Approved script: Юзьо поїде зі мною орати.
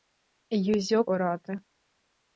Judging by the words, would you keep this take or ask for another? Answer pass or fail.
fail